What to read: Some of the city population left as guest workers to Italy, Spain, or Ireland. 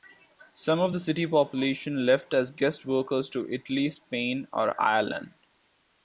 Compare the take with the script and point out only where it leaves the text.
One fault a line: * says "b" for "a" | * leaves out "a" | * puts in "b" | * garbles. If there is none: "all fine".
all fine